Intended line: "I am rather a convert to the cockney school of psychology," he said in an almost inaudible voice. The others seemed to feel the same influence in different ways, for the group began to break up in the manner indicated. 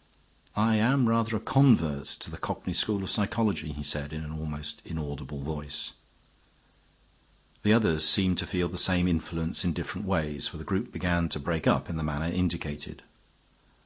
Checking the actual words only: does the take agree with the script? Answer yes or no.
yes